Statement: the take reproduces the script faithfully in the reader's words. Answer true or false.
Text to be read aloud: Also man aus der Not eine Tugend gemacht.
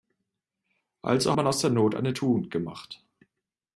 true